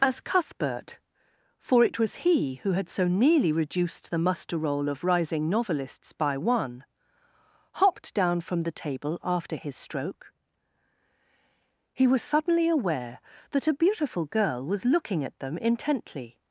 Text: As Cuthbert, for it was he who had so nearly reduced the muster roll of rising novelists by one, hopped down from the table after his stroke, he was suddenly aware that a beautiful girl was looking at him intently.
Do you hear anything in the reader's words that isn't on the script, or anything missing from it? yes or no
yes